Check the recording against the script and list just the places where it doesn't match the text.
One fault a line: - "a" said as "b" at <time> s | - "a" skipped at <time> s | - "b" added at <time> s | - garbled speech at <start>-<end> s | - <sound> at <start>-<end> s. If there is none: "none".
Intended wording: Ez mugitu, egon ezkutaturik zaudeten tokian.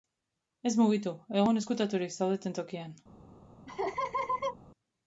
- laugh at 3.7-4.6 s